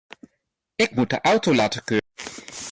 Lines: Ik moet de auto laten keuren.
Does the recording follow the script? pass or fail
pass